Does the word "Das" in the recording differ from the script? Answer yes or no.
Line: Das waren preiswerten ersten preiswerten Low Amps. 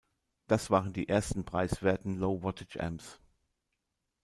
no